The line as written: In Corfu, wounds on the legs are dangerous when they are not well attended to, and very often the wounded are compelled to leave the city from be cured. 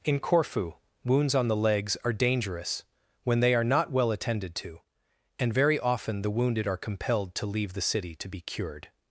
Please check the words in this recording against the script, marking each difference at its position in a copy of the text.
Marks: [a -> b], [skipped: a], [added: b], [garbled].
In Corfu, wounds on the legs are dangerous when they are not well attended to, and very often the wounded are compelled to leave the city [from -> to] be cured.